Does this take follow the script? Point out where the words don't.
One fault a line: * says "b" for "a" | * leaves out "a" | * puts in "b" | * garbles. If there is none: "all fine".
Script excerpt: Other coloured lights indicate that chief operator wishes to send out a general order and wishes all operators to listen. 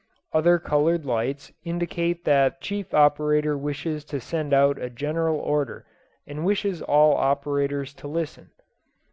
all fine